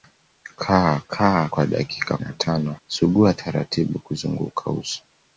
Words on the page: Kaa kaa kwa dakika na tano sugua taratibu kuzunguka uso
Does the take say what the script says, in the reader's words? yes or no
yes